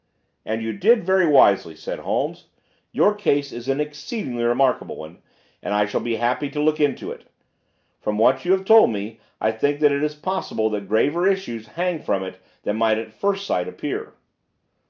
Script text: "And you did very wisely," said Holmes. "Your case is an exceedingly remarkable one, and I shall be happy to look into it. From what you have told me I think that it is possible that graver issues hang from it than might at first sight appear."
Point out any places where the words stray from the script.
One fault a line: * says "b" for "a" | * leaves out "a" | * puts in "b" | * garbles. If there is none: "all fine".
all fine